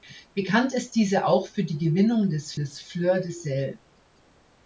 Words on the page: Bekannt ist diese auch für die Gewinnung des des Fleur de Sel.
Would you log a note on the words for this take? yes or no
no